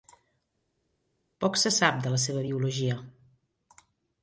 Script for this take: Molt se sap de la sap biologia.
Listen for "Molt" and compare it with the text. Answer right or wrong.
wrong